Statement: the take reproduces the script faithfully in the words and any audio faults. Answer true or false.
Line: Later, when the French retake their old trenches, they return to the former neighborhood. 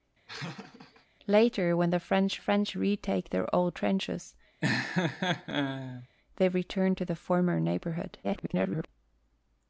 false